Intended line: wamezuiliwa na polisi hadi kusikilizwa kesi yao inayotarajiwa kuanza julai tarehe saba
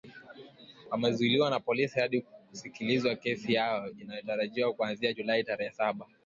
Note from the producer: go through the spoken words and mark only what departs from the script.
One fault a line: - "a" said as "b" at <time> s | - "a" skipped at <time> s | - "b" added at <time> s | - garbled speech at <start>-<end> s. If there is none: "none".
none